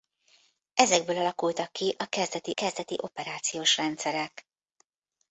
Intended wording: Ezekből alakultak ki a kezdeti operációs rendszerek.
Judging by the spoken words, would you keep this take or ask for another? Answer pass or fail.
fail